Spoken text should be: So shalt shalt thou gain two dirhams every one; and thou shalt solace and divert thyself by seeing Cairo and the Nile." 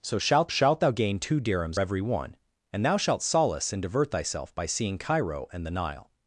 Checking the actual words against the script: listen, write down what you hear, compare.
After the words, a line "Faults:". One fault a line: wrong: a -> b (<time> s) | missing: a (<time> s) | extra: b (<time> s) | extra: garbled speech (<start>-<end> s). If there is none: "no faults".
So shalt shalt thou gain two dirhams every one; and thou shalt solace and divert thyself by seeing Cairo and the Nile."
Faults:
no faults